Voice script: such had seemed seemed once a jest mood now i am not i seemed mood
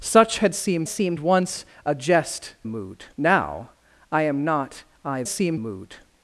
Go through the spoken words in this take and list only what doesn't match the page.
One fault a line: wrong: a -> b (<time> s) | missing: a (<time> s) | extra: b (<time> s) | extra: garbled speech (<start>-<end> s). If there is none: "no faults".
no faults